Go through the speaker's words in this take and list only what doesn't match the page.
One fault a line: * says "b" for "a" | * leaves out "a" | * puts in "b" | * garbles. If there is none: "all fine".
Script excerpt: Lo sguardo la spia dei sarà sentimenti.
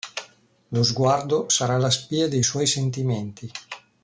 * puts in "sarà"
* says "suoi" for "sarà"